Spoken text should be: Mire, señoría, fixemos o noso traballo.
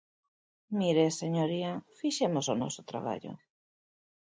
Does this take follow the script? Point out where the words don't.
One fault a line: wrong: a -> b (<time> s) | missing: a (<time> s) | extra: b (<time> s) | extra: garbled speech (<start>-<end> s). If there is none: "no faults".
no faults